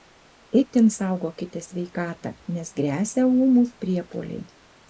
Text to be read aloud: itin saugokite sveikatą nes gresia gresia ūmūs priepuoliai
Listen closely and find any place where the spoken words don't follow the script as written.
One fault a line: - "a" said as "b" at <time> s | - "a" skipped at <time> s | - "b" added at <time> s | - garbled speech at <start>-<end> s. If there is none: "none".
- "gresia" skipped at 3.3 s